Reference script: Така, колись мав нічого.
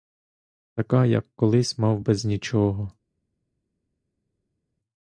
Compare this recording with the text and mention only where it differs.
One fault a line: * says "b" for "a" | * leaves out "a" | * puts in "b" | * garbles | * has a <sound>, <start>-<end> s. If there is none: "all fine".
* puts in "як"
* puts in "без"